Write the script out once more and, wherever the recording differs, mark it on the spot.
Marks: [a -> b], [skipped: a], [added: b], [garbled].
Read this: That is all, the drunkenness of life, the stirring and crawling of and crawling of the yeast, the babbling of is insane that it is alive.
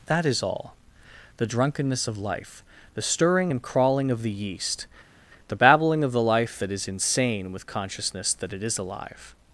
That is all, the drunkenness of life, the stirring and crawling of [skipped: and crawling of] the yeast, the babbling of [added: the life that] is insane [added: with consciousness] that it is alive.